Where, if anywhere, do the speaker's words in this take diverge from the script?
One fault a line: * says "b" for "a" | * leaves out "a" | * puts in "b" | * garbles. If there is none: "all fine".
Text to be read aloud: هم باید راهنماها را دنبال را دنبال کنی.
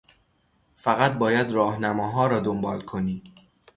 * says "فقط" for "هم"
* leaves out "را دنبال"